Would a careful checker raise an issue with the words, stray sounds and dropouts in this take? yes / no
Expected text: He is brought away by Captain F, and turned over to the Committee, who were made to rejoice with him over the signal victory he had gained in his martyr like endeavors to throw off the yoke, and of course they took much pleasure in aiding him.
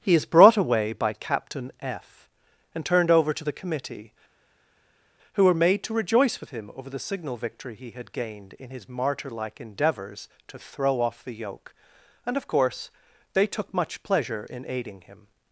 no